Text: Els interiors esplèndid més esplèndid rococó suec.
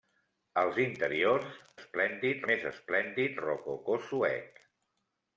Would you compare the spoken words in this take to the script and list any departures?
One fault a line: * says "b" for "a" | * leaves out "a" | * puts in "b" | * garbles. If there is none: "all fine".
all fine